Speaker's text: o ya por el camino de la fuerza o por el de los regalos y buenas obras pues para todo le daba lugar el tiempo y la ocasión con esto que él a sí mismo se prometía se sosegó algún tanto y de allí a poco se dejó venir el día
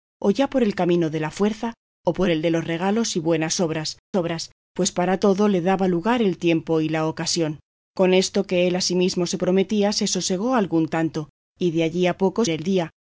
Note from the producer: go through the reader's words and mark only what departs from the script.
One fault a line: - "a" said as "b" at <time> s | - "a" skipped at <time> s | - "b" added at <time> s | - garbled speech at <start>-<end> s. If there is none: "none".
- "obras" added at 4.1 s
- "se dejó venir" skipped at 12.4 s